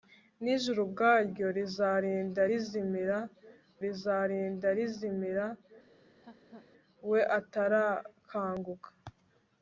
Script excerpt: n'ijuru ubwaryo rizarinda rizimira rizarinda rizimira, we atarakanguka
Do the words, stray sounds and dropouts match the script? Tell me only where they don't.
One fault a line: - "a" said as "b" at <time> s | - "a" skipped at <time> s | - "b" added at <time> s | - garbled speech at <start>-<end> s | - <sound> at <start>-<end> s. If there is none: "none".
- laugh at 5.9-6.7 s